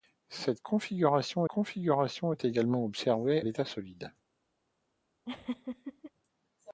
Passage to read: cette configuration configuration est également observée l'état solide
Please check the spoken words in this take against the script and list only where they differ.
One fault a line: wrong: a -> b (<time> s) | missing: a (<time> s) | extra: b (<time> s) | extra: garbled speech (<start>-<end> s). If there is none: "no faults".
no faults